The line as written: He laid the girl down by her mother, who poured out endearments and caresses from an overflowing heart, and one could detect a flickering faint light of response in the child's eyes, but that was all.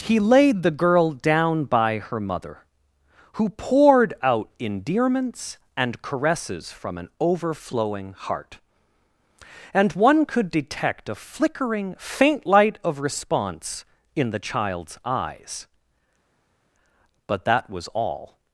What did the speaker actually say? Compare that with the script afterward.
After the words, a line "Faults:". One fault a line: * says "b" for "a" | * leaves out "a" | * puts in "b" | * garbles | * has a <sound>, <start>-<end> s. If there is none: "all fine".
He laid the girl down by her mother, who poured out endearments and caresses from an overflowing heart, and one could detect a flickering faint light of response in the child's eyes, but that was all.
Faults:
all fine